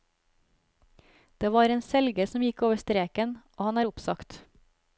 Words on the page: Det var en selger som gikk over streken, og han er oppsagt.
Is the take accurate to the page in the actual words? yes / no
yes